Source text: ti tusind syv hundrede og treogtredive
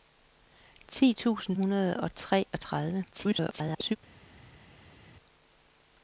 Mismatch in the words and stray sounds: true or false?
true